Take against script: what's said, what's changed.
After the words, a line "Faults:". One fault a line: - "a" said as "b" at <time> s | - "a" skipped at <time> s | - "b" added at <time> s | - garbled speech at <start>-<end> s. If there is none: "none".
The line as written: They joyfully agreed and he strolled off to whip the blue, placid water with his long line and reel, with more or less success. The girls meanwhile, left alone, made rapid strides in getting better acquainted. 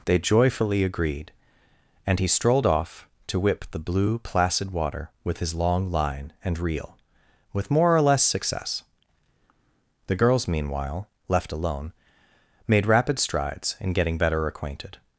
They joyfully agreed and he strolled off to whip the blue, placid water with his long line and reel, with more or less success. The girls meanwhile, left alone, made rapid strides in getting better acquainted.
Faults:
none